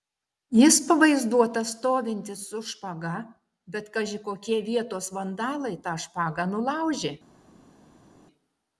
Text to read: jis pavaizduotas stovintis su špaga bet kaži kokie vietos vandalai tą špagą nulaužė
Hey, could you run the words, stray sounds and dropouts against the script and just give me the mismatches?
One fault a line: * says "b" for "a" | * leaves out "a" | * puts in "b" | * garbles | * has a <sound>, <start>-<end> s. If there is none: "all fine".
all fine